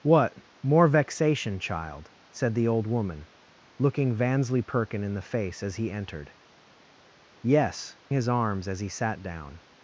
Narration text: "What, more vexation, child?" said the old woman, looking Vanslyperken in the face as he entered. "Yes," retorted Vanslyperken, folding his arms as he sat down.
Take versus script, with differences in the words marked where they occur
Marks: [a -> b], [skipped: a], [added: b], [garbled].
"What, more vexation, child?" said the old woman, looking Vanslyperken in the face as he entered. "Yes," [skipped: retorted Vanslyperken, folding] his arms as he sat down.